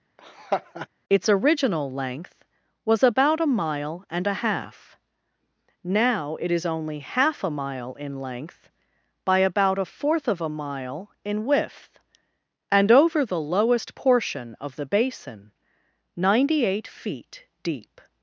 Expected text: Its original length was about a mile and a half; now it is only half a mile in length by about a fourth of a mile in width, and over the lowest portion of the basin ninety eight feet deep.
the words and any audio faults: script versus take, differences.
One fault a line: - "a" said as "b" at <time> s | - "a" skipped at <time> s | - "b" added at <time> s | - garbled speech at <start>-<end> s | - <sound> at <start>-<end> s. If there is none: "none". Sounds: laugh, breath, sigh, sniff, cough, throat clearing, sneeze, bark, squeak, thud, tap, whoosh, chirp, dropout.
- laugh at 0.2-0.9 s